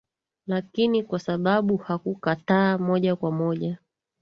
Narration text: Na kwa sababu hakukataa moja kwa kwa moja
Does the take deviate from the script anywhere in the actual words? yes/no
yes